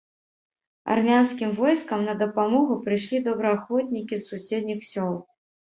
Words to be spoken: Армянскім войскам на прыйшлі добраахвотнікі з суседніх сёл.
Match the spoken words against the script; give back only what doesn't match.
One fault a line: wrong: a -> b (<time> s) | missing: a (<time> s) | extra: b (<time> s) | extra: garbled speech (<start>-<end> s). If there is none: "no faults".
extra: дапамогу (2.2 s)